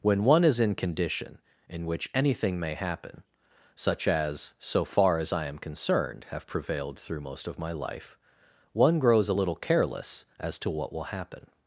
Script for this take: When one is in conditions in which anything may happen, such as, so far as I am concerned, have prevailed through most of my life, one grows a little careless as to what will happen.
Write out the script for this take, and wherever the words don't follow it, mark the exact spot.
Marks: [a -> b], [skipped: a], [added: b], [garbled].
When one is in [conditions -> condition] in which anything may happen, such as, so far as I am concerned, have prevailed through most of my life, one grows a little careless as to what will happen.